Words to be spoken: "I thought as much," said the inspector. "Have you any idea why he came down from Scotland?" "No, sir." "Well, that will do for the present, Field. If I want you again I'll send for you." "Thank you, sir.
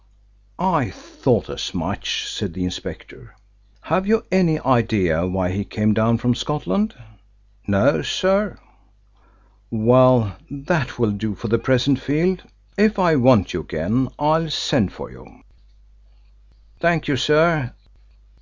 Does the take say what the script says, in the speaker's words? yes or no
yes